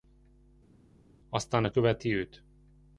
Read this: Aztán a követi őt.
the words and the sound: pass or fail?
pass